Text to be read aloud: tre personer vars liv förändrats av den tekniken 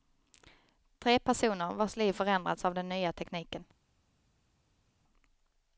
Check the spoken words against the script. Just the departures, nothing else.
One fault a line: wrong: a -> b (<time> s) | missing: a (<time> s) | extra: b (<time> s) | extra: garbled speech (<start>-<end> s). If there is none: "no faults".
extra: nya (2.9 s)